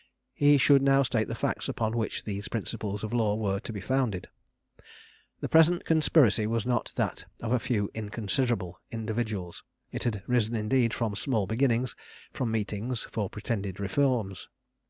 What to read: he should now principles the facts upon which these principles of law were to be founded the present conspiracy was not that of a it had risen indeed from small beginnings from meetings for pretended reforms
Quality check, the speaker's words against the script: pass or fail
fail